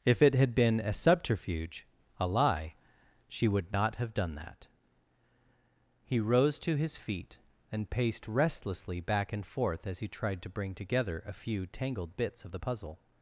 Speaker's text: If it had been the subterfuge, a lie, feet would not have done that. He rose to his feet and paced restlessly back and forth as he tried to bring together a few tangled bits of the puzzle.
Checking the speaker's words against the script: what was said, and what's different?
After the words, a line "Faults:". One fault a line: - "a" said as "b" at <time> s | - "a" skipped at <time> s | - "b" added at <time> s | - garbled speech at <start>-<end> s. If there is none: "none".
If it had been a subterfuge, a lie, she would not have done that. He rose to his feet and paced restlessly back and forth as he tried to bring together a few tangled bits of the puzzle.
Faults:
- "the" said as "a" at 0.8 s
- "feet" said as "she" at 3.3 s